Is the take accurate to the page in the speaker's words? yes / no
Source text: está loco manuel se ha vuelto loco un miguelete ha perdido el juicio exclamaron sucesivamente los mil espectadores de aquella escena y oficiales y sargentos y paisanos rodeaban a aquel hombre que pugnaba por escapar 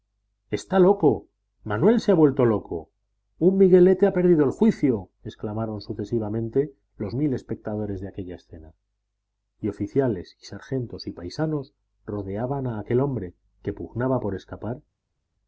yes